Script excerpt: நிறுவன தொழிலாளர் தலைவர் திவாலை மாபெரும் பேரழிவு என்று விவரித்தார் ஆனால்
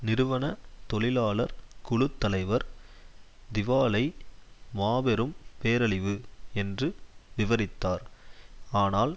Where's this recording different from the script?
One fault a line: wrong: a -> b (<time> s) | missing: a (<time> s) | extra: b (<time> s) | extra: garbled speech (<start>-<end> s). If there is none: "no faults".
extra: குழு (1.8 s)